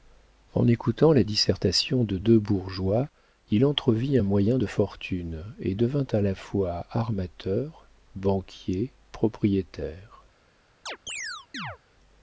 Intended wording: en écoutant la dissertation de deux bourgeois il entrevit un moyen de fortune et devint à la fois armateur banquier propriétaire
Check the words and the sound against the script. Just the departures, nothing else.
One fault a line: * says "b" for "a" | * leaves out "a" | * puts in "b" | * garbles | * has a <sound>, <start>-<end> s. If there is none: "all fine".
* has a chirp, 10.9-11.8 s